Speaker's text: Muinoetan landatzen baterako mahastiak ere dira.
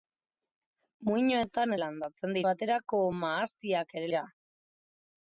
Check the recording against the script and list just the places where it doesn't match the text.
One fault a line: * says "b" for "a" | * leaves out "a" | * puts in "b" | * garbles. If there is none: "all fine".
all fine